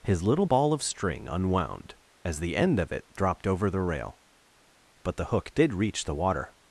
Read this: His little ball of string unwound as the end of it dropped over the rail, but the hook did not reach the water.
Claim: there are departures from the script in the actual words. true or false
true